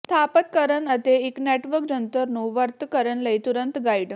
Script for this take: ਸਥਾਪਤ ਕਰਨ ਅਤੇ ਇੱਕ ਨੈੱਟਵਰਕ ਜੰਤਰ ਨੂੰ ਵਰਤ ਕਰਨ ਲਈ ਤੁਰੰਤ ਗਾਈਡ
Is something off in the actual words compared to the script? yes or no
no